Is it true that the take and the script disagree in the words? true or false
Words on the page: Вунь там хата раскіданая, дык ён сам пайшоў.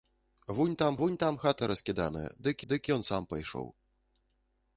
true